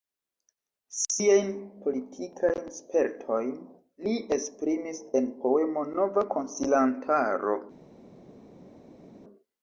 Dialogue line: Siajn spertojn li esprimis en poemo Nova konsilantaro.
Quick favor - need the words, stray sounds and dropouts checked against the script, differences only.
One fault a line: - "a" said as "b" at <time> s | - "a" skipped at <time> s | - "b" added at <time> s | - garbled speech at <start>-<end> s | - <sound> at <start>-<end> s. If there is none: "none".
- "politikajn" added at 1.8 s